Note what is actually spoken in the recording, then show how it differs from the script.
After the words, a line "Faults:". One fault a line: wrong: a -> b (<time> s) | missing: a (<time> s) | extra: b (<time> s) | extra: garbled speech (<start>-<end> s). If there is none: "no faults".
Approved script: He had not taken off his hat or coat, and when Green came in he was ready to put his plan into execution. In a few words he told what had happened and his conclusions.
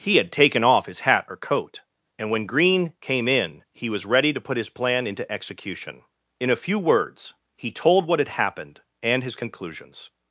He had taken off his hat or coat, and when Green came in he was ready to put his plan into execution. In a few words he told what had happened and his conclusions.
Faults:
missing: not (0.3 s)